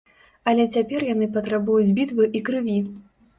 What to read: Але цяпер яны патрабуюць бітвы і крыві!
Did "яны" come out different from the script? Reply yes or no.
no